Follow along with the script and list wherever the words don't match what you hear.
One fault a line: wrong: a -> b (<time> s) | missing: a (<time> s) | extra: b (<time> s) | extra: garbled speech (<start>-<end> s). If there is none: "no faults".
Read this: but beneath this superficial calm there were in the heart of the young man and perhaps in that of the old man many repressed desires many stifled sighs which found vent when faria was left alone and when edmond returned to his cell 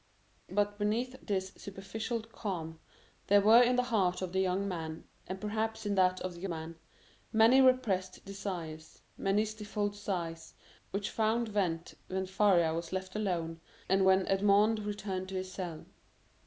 missing: old (6.5 s)